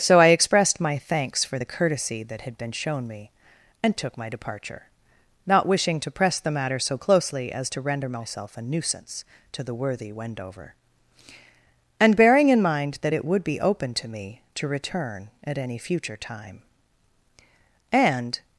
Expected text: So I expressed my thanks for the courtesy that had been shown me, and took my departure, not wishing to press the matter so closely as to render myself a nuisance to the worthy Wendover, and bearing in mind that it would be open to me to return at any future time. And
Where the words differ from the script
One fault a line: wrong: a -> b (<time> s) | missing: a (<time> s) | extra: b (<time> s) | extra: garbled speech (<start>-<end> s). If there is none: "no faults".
no faults